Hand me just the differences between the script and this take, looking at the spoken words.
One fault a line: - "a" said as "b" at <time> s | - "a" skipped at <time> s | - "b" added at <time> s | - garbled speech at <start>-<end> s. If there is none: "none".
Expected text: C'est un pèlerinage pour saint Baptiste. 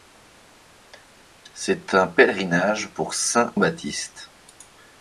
none